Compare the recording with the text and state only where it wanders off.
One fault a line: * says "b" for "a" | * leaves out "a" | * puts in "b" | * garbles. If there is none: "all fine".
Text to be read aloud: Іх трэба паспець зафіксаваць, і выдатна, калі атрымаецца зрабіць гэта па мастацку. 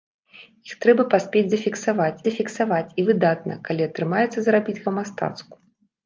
* puts in "зафіксаваць"
* leaves out "гэта"